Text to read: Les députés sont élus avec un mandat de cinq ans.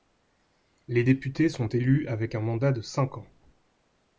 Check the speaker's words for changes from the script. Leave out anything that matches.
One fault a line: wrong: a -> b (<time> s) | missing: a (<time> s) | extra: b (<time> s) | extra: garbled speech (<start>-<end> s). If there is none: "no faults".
no faults